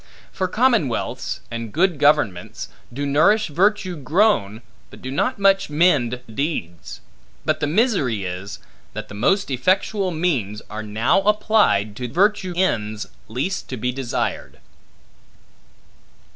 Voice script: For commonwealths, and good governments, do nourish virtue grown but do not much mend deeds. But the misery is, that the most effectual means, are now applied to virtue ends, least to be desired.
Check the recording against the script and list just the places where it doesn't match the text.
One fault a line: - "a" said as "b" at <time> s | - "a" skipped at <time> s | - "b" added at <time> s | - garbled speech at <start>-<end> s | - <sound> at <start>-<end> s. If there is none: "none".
none